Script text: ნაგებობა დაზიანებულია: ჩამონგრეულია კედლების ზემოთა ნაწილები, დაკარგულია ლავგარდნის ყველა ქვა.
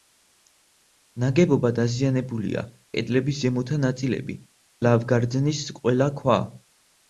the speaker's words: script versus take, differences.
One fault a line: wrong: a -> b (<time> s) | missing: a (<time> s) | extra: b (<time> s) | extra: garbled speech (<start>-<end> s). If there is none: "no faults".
missing: ჩამონგრეულია (2.6 s)
missing: დაკარგულია (4.4 s)